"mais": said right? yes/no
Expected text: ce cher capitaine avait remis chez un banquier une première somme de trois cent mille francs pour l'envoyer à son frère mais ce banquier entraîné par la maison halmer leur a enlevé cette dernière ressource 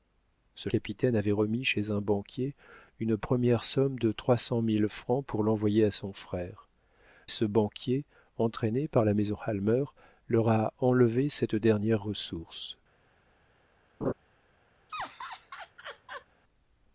no